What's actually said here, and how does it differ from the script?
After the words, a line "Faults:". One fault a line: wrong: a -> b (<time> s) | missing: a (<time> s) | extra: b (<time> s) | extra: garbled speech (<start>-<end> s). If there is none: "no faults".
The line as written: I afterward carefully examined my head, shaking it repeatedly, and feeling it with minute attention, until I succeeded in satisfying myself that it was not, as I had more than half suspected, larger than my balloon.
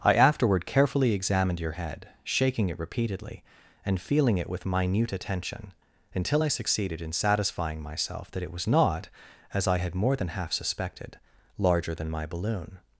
I afterward carefully examined your head, shaking it repeatedly, and feeling it with minute attention, until I succeeded in satisfying myself that it was not, as I had more than half suspected, larger than my balloon.
Faults:
wrong: my -> your (1.6 s)